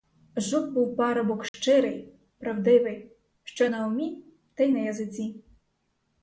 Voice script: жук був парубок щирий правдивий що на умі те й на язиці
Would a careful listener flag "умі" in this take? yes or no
no